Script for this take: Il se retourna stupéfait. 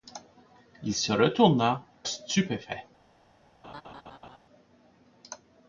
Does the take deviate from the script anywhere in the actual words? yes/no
no